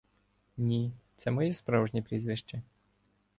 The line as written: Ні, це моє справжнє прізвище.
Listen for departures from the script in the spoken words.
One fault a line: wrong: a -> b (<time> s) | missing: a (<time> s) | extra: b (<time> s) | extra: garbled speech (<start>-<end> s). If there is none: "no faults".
no faults